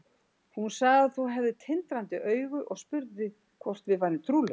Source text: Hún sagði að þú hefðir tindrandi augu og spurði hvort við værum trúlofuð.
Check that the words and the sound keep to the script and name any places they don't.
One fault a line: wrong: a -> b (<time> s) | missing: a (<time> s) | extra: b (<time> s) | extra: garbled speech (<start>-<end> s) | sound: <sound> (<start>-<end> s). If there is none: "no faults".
no faults